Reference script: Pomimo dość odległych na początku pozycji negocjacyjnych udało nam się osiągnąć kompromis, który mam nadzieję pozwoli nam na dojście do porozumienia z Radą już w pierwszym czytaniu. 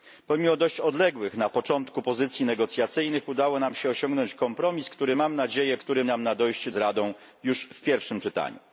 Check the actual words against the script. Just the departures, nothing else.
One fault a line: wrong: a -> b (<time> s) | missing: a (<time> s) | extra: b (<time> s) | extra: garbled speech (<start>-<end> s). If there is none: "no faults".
wrong: pozwoli -> który (5.8 s)
missing: do porozumienia (6.7 s)